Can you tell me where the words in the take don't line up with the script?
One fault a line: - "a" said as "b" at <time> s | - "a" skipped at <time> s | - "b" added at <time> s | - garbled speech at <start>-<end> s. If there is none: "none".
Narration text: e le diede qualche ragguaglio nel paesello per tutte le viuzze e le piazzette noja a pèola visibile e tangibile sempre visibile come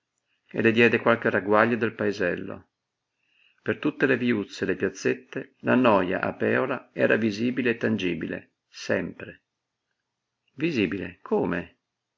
- "nel" said as "del" at 1.8 s
- "la" added at 5.6 s
- "era" added at 6.9 s